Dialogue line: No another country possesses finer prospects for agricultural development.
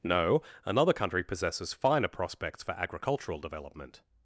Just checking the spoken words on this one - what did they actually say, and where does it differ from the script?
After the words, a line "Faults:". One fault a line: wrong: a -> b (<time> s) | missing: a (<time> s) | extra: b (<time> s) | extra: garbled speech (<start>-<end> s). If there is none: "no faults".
No another country possesses finer prospects for agricultural development.
Faults:
no faults